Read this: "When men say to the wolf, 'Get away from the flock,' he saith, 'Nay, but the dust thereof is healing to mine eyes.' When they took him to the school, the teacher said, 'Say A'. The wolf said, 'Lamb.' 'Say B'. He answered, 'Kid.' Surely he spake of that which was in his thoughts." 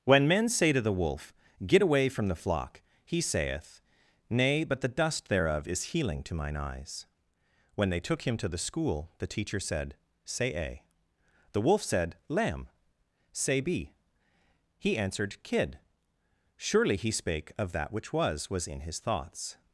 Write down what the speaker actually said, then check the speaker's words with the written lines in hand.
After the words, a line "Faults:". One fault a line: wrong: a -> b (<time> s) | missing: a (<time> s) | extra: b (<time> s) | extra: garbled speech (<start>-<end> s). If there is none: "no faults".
"When men say to the wolf, 'Get away from the flock,' he saith, 'Nay, but the dust thereof is healing to mine eyes.' When they took him to the school, the teacher said, 'Say A'. The wolf said, 'Lamb.' 'Say B'. He answered, 'Kid.' Surely he spake of that which was was in his thoughts."
Faults:
extra: was (18.5 s)